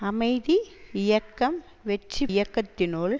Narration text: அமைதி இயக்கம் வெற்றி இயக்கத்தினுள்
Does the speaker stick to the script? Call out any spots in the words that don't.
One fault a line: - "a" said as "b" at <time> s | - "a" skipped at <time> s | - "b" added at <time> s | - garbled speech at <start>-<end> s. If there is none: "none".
none